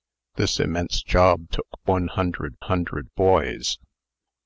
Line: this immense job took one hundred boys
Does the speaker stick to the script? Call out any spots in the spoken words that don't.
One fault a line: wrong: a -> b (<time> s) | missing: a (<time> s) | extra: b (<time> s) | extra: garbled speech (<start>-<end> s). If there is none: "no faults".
extra: hundred (2.6 s)